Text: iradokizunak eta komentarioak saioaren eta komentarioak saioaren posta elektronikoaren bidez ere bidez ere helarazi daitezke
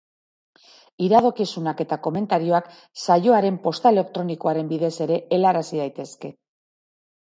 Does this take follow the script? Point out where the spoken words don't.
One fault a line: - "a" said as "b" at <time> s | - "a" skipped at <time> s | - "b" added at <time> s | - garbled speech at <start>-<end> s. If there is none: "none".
- "eta komentarioak saioaren" skipped at 3.6 s
- "bidez ere" skipped at 5.2 s